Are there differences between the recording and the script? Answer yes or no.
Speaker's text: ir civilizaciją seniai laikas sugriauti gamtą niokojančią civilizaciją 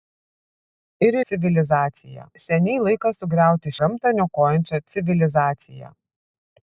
no